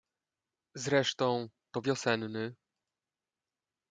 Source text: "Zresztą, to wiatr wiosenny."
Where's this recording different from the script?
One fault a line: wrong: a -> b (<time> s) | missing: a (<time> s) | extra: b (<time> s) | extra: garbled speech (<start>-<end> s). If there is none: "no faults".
missing: wiatr (1.8 s)